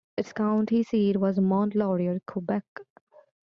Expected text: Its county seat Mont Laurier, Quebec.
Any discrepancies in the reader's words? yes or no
yes